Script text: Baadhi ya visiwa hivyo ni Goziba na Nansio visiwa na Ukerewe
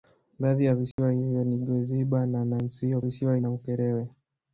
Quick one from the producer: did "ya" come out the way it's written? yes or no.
yes